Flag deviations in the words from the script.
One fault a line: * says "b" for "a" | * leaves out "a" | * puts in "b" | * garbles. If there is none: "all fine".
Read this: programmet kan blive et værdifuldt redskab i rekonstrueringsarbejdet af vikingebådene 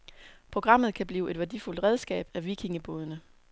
* leaves out "i rekonstrueringsarbejdet"